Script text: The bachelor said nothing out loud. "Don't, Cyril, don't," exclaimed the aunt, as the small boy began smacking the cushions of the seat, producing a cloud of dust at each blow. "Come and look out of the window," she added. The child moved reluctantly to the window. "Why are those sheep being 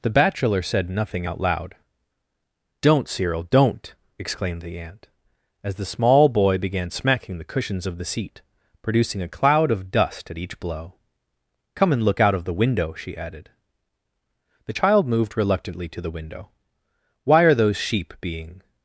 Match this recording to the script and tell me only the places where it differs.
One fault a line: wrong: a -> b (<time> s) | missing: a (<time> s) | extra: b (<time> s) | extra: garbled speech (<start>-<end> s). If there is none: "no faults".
no faults